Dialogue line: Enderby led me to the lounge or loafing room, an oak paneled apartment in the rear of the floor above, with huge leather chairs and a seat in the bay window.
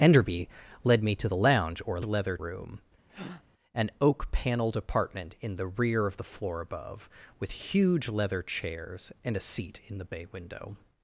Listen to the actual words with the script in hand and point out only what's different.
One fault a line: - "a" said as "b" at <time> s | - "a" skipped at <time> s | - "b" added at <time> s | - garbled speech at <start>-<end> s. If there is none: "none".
- "loafing" said as "leather" at 2.0 s